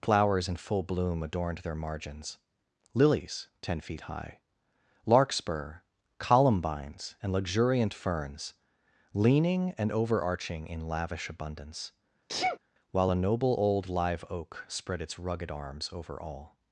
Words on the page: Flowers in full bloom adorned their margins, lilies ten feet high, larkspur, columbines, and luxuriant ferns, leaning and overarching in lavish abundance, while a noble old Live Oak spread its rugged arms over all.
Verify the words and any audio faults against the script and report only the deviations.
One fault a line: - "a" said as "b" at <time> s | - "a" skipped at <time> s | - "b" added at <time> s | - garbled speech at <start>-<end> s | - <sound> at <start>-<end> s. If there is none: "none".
- sneeze at 12.3-12.6 s